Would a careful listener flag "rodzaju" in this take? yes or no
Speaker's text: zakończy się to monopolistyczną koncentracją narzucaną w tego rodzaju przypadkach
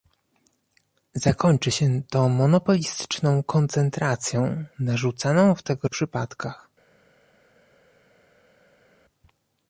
yes